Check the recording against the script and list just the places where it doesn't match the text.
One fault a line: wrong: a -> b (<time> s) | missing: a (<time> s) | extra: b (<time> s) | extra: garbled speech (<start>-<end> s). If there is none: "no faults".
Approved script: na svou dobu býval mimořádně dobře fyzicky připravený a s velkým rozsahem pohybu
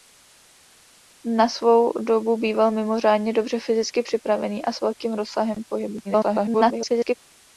extra: garbled speech (6.0-7.1 s)